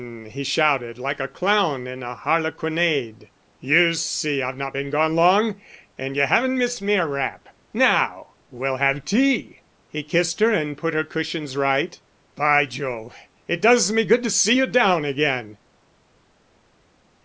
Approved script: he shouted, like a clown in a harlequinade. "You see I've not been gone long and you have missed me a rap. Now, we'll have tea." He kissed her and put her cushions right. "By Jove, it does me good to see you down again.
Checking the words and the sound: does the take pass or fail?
fail